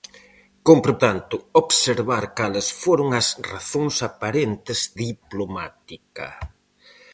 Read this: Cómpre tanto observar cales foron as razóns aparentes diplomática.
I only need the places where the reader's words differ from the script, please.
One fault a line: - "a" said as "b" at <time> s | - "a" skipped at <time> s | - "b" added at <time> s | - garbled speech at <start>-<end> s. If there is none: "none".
none